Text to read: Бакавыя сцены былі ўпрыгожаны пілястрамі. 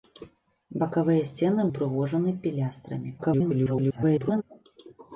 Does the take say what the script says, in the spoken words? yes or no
no